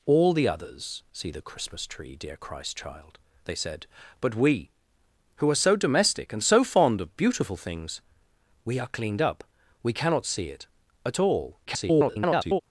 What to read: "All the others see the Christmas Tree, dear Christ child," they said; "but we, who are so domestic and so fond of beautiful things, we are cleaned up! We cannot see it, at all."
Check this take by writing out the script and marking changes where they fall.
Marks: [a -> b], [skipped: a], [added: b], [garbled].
"All the others see the Christmas Tree, dear Christ child," they said; "but we, who are so domestic and so fond of beautiful things, we are cleaned up! We cannot see it, at all." [garbled]